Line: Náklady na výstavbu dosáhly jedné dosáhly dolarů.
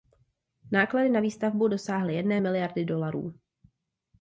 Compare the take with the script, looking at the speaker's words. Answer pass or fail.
fail